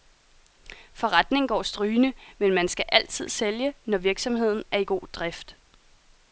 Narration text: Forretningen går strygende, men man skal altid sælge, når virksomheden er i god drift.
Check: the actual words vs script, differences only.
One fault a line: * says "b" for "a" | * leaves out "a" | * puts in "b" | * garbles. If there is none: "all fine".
all fine